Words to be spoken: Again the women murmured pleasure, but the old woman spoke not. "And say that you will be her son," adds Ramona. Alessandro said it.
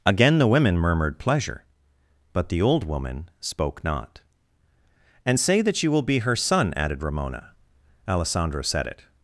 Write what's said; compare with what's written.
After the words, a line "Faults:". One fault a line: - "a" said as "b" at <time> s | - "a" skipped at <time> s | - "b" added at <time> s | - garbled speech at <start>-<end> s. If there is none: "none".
Again the women murmured pleasure, but the old woman spoke not. "And say that you will be her son," added Ramona. Alessandro said it.
Faults:
- "adds" said as "added" at 6.8 s